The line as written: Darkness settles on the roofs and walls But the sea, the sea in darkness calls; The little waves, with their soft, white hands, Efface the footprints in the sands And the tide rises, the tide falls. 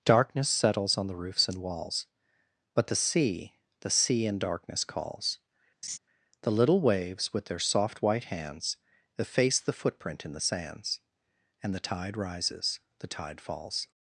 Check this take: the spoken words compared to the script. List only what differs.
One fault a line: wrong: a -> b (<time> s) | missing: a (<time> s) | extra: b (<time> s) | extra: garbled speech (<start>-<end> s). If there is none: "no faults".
wrong: footprints -> footprint (9.7 s)